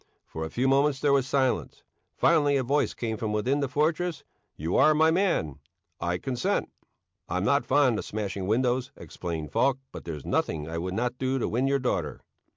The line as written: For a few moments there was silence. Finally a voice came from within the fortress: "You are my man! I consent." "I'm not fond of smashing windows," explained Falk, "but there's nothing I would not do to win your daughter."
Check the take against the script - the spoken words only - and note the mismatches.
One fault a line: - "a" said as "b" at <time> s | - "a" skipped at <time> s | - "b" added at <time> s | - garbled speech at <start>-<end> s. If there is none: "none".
none